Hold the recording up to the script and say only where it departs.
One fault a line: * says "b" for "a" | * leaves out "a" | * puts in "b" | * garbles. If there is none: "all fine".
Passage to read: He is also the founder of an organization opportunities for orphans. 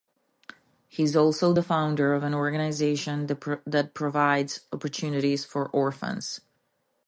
* puts in "that provides"